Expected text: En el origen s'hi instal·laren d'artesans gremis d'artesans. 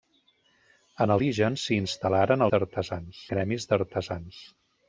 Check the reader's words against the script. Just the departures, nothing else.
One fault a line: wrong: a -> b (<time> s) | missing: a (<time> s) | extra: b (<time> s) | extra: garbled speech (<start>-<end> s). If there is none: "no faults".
no faults